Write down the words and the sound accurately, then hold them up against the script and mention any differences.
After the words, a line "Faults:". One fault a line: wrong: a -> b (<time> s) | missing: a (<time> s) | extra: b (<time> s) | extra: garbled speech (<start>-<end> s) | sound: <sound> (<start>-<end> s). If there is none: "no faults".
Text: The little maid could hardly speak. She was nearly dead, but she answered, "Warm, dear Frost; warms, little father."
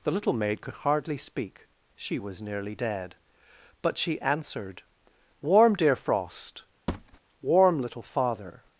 The little maid could hardly speak. She was nearly dead, but she answered, "Warm, dear Frost; warm, little father."
Faults:
sound: thud (6.9-7.2 s)
wrong: warms -> warm (7.4 s)